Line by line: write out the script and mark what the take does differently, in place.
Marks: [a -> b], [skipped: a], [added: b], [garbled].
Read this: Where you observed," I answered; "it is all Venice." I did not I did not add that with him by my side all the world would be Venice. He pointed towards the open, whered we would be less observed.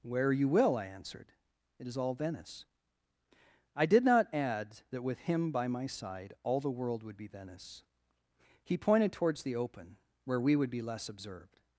Where you [observed," -> will] I answered; "it is all Venice." I did not [skipped: I did not] add that with him by my side all the world would be Venice. He pointed towards the open, [whered -> where] we would be less observed.